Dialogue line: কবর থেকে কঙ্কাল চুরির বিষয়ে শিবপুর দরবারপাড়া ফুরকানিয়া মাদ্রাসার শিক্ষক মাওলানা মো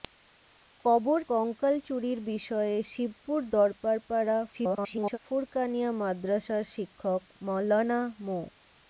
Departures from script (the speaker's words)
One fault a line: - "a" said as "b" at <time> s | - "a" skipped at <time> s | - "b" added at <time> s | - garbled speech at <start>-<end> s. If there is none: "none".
- "থেকে" skipped at 1.2 s
- garbled speech at 4.5-5.2 s